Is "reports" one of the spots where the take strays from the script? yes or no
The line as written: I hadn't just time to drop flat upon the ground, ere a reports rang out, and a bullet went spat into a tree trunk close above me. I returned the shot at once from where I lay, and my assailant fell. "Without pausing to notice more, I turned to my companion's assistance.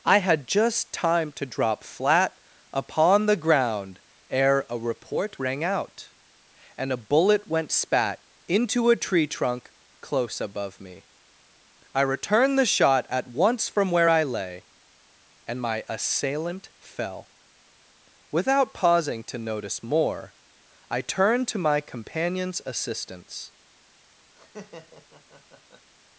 yes